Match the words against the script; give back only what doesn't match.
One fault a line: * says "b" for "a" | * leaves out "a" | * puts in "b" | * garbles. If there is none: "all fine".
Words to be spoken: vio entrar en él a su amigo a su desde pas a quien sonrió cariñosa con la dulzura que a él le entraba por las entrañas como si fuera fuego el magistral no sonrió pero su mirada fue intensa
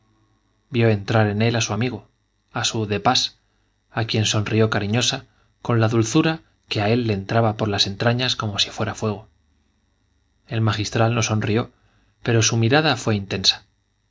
* says "de" for "desde"